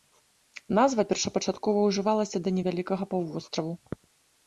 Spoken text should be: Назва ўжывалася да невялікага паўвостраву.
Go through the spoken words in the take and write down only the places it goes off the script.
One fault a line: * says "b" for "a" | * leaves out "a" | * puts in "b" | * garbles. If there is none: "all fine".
* puts in "першапачаткова"